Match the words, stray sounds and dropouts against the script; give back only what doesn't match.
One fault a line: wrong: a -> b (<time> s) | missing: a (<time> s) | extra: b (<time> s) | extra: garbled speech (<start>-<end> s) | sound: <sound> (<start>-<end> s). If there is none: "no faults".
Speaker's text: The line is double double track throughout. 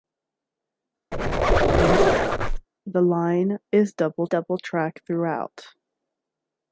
sound: squeak (1.1-2.7 s)